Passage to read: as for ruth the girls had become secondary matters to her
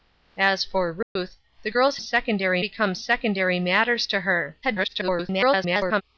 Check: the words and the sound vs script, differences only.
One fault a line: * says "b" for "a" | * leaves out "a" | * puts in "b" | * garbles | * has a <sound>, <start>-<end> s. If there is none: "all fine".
* has a dropout, 1.0-1.2 s
* says "secondary" for "had"
* garbles